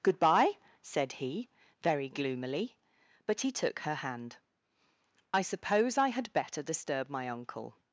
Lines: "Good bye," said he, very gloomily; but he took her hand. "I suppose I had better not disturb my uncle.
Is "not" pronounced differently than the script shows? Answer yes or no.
yes